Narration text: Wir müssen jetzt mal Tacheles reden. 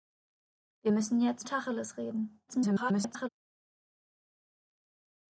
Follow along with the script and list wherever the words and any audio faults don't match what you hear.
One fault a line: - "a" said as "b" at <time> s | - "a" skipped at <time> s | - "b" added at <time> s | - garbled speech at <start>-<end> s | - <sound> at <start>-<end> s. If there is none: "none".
- "mal" skipped at 1.4 s
- garbled speech at 2.5-3.3 s